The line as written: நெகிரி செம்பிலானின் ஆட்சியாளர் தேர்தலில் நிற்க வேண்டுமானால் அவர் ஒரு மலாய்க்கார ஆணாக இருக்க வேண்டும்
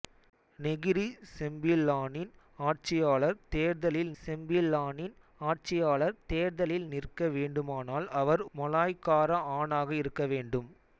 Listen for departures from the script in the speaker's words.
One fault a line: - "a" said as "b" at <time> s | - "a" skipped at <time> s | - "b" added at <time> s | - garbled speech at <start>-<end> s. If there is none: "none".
- "செம்பிலானின் ஆட்சியாளர் தேர்தலில்" added at 4.2 s
- "ஒரு" skipped at 8.4 s